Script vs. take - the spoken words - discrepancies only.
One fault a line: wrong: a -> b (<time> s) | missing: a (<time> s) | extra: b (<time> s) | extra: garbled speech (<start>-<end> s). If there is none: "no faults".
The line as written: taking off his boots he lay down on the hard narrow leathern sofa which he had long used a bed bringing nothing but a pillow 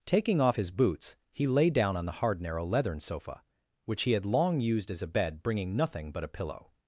extra: as (4.9 s)